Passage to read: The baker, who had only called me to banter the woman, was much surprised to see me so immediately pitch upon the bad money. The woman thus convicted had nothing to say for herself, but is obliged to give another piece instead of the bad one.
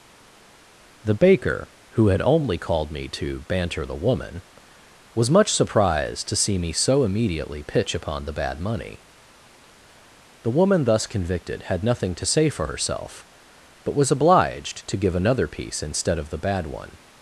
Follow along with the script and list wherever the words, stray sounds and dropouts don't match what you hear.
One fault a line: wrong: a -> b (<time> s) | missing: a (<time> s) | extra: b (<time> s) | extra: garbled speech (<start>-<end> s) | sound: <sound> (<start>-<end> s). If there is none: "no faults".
wrong: is -> was (14.0 s)